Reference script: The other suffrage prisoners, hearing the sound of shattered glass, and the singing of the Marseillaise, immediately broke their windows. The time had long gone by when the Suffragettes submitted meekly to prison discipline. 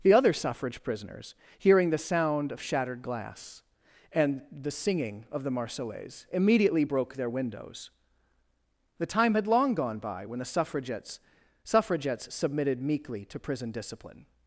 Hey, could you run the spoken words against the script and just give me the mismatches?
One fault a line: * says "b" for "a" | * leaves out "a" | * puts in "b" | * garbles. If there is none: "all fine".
* puts in "Suffragettes"